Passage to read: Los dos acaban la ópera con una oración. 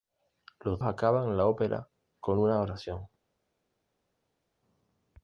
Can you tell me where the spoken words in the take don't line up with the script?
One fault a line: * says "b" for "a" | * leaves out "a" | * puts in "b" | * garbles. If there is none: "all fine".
* leaves out "dos"